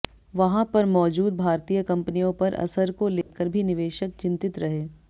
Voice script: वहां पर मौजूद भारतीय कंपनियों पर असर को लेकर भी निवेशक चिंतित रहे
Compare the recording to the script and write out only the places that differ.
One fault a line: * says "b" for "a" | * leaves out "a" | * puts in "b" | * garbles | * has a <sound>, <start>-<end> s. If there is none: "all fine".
* has a dropout, 3.2-3.3 s